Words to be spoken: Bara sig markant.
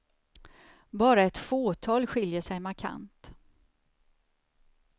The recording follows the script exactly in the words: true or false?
false